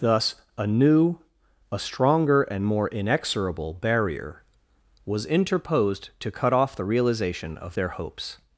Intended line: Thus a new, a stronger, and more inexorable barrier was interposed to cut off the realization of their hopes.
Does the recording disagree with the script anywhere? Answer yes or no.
no